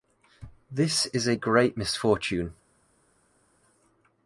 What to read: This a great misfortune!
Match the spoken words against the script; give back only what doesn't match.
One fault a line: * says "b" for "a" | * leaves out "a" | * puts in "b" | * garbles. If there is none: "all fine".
* puts in "is"